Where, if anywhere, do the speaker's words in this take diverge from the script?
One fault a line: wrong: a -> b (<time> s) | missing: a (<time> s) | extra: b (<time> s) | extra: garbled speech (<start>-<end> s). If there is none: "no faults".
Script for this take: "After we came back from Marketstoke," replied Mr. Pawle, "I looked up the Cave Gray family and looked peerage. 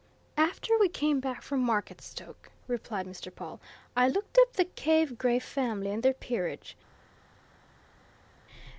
wrong: looked -> their (6.0 s)